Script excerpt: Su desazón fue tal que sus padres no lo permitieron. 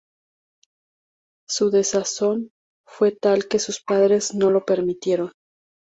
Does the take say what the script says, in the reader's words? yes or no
yes